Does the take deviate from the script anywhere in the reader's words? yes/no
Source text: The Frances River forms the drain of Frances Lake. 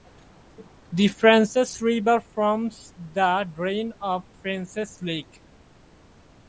no